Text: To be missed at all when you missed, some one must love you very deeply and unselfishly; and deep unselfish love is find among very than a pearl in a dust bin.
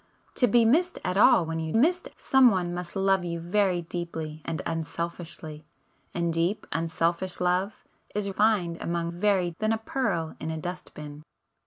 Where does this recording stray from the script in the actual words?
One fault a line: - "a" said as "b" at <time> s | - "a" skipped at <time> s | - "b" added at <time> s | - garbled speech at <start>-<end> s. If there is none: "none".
none